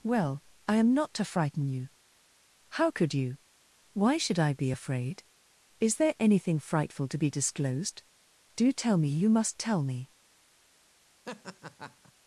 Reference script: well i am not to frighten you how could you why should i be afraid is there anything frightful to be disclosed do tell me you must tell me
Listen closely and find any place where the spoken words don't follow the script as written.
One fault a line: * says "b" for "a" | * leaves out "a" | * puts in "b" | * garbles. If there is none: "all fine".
all fine